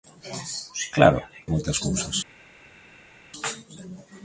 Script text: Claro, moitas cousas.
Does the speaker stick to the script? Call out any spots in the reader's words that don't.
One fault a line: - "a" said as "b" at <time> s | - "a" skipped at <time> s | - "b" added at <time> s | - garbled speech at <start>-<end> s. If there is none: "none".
none